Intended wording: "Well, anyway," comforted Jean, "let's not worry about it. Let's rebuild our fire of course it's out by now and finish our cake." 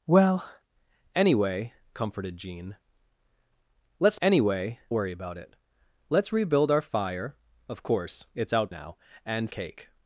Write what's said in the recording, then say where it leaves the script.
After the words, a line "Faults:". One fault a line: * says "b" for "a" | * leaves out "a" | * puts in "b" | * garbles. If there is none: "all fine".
"Well, anyway," comforted Jean, "let's anyway worry about it. Let's rebuild our fire of course it's out now and cake."
Faults:
* says "anyway" for "not"
* leaves out "by"
* leaves out "finish our"